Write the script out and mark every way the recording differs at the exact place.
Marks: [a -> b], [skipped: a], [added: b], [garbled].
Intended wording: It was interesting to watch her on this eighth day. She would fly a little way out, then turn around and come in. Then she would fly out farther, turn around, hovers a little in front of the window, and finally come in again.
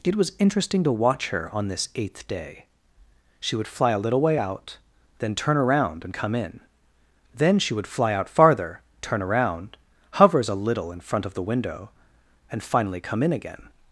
It was interesting to watch her on this eighth day. She would fly a little way out, then turn around and come in. Then she would fly out farther, turn around, hovers a little in front of the window, and finally come in again.